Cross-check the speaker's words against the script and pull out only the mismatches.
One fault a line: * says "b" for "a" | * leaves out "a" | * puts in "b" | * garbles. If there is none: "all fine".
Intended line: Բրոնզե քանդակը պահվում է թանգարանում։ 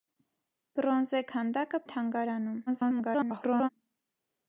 * leaves out "պահվում"
* garbles